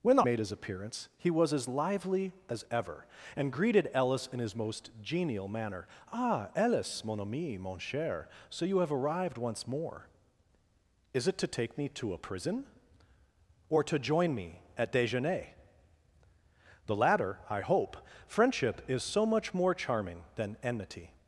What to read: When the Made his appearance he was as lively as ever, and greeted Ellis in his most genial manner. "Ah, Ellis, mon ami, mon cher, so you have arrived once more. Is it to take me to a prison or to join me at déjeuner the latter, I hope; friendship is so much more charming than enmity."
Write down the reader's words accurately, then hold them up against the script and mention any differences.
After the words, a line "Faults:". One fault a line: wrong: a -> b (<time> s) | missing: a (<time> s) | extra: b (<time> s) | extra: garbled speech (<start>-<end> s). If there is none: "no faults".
When the Made his appearance he was as lively as ever, and greeted Ellis in his most genial manner. "Ah, Ellis, mon ami, mon cher, so you have arrived once more. Is it to take me to a prison or to join me at déjeuner the latter, I hope; friendship is so much more charming than enmity."
Faults:
no faults